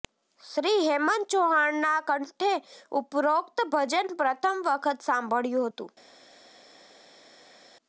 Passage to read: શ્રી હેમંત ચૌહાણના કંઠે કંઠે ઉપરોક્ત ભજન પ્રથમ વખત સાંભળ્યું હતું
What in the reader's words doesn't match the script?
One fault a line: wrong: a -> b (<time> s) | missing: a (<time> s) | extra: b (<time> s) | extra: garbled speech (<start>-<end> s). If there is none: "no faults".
missing: કંઠે (2.5 s)